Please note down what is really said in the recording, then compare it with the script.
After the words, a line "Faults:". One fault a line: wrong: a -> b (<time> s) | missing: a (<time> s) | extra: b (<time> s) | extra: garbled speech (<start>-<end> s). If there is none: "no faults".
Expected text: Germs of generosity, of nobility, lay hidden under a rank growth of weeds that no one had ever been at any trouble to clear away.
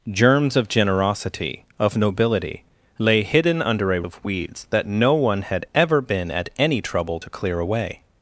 Germs of generosity, of nobility, lay hidden under a of weeds that no one had ever been at any trouble to clear away.
Faults:
missing: rank growth (4.0 s)